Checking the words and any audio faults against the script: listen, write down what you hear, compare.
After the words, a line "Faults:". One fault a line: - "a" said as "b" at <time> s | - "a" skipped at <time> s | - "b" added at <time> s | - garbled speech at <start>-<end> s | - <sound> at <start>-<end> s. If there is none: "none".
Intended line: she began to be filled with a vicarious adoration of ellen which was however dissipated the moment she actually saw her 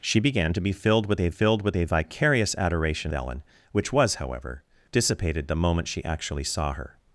she began to be filled with a filled with a vicarious adoration ellen which was however dissipated the moment she actually saw her
Faults:
- "filled with a" added at 1.3 s
- "of" skipped at 3.1 s